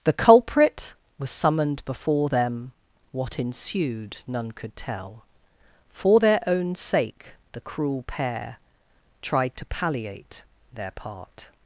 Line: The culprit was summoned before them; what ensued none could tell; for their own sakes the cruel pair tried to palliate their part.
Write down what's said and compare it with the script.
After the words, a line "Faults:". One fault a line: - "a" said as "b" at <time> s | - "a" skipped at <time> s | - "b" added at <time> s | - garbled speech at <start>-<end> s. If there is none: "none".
The culprit was summoned before them; what ensued none could tell; for their own sake the cruel pair tried to palliate their part.
Faults:
- "sakes" said as "sake" at 6.7 s